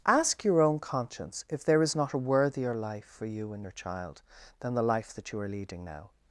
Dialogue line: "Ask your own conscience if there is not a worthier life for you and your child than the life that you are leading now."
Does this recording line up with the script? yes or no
yes